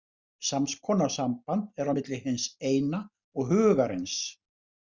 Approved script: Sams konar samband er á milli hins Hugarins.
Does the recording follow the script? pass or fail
fail